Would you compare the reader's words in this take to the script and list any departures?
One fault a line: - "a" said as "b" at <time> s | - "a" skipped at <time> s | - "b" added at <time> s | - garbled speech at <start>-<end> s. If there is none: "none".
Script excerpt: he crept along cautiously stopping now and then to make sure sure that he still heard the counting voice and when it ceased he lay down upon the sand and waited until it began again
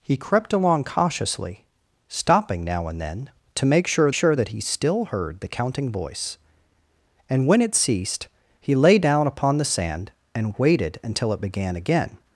none